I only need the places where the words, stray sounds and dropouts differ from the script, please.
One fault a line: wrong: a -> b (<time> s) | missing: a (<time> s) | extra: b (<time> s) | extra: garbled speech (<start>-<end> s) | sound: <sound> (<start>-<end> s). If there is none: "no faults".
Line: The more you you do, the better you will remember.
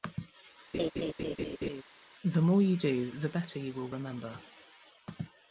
sound: laugh (0.7-1.8 s)
missing: you (2.8 s)